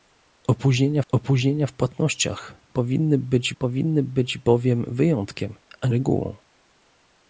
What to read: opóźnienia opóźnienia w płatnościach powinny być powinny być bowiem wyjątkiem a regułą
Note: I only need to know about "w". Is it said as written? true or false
true